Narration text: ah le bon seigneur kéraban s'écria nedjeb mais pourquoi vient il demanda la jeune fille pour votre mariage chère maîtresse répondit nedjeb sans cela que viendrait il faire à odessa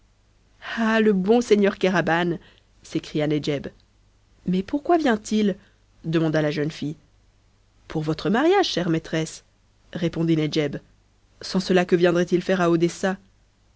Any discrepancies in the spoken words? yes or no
no